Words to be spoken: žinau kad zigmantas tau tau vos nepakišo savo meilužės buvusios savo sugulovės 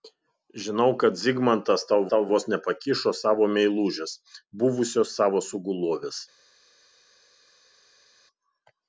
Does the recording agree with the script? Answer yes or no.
yes